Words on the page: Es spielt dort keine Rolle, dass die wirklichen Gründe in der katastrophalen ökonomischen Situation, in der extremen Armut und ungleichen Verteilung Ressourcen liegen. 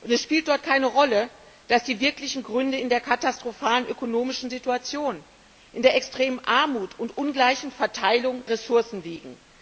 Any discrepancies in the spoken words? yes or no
no